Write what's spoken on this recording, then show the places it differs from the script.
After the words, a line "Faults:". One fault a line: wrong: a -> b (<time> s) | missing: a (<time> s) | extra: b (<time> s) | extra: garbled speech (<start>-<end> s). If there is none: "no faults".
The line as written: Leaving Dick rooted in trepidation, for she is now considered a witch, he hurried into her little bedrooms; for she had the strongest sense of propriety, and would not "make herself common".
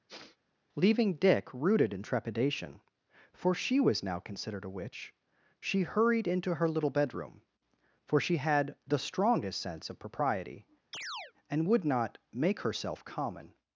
Leaving Dick rooted in trepidation, for she was now considered a witch, she hurried into her little bedroom; for she had the strongest sense of propriety, and would not "make herself common".
Faults:
wrong: is -> was (3.8 s)
wrong: he -> she (5.6 s)
wrong: bedrooms -> bedroom (6.9 s)